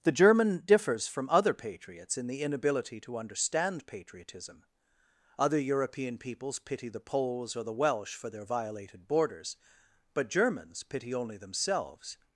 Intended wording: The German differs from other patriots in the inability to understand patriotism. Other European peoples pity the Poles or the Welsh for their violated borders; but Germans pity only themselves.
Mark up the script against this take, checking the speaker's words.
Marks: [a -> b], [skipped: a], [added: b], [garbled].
The German differs from other patriots in the inability to understand patriotism. Other European peoples pity the Poles or the Welsh for their violated borders; but Germans pity only themselves.